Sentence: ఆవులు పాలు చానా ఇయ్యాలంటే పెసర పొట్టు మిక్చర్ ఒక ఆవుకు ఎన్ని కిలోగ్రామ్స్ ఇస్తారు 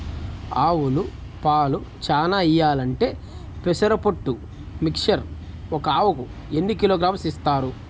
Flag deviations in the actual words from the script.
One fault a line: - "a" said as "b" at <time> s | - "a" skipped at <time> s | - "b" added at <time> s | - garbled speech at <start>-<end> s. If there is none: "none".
none